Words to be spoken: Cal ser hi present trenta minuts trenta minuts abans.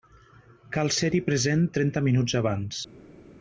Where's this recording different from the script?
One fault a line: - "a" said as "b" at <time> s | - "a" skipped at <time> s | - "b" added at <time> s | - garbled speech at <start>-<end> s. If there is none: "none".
- "trenta minuts" skipped at 2.4 s